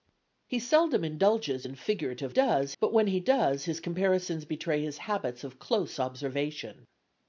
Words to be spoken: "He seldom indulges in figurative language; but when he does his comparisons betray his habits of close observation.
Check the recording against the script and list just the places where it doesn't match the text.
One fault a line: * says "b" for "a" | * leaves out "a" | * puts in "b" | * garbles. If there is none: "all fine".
* says "does" for "language"